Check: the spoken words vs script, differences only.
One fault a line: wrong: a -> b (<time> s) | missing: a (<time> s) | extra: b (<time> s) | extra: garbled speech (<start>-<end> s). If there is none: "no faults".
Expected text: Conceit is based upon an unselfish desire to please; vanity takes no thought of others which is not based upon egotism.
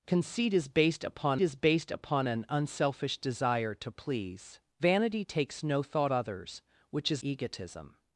extra: is based upon (1.4 s)
missing: of (6.1 s)
missing: not based upon (7.2 s)